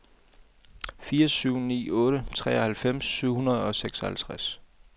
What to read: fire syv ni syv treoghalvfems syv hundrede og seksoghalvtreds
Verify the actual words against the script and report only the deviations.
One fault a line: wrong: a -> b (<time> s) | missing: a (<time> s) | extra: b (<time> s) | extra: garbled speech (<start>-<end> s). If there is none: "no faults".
wrong: syv -> otte (1.9 s)